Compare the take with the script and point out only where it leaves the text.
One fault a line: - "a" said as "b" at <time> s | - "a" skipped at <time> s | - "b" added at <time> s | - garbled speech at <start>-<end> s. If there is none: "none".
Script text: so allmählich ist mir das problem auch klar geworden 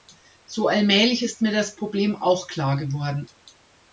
none